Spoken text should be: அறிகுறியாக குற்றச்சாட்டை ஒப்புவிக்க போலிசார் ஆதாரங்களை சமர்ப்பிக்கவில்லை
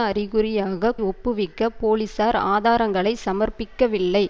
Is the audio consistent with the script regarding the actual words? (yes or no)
no